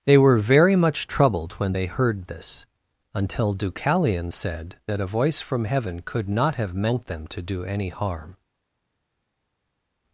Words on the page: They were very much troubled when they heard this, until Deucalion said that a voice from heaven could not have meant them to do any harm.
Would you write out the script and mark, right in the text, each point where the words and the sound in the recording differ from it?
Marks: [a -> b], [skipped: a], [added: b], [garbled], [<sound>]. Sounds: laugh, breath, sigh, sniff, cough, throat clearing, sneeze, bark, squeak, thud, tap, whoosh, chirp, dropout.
They were very much troubled when they heard this, until Deucalion said that a voice from heaven could not have meant them to do any harm.